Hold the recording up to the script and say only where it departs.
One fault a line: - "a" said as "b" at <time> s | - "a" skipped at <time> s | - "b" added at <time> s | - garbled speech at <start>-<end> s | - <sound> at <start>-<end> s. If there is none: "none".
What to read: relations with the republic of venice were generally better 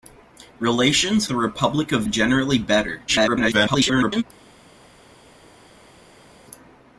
- "with" skipped at 1.3 s
- "venice were" skipped at 2.0 s
- garbled speech at 3.1-4.2 s